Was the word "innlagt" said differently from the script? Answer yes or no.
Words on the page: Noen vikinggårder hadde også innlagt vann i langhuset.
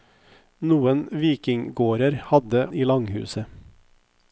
yes